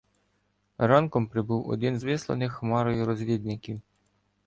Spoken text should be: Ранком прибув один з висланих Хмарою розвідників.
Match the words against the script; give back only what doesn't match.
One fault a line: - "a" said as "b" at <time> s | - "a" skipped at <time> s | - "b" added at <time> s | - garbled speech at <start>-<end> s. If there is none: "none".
none